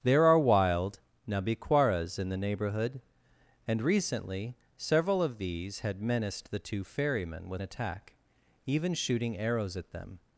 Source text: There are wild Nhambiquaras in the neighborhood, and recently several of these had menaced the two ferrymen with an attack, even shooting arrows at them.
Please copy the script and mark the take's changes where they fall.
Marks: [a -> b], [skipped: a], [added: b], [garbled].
There are wild Nhambiquaras in the neighborhood, and recently several of these had menaced the two ferrymen with [skipped: an] attack, even shooting arrows at them.